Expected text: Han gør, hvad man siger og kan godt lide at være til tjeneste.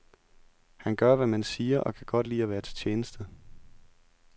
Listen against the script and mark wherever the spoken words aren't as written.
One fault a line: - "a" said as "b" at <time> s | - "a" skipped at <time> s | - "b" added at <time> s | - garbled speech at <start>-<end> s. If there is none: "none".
none